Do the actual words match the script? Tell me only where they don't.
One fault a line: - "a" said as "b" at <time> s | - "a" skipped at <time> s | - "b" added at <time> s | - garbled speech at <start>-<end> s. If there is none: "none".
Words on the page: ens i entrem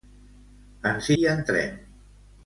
none